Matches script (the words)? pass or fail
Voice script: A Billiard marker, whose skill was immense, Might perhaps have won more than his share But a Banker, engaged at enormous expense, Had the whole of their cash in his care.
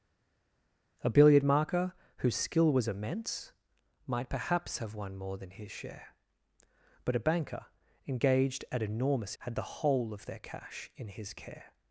fail